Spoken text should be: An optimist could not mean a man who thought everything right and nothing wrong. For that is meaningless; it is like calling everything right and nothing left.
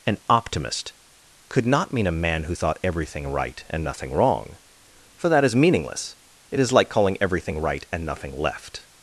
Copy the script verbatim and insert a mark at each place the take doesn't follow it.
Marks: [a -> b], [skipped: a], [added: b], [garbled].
An optimist could not mean a man who thought everything right and nothing wrong. For that is meaningless; it is like calling everything right and nothing left.